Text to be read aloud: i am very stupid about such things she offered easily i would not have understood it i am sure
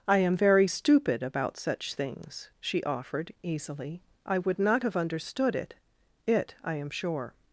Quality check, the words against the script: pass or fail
fail